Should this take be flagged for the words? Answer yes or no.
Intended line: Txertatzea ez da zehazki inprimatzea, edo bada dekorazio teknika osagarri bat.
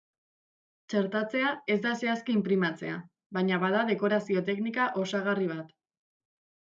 yes